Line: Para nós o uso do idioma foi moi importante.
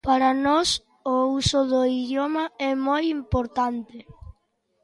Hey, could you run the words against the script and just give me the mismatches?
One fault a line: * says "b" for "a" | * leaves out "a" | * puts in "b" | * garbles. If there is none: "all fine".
* says "é" for "foi"